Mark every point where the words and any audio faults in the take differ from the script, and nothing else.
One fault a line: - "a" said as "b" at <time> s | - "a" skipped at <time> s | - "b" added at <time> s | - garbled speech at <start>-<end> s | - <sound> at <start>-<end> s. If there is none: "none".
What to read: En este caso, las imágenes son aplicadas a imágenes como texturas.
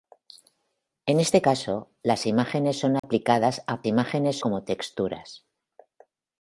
- dropout at 3.0-3.0 s